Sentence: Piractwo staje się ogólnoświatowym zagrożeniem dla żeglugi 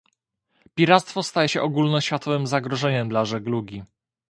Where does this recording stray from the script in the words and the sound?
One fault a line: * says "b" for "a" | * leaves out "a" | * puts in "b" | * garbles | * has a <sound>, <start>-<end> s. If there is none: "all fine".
all fine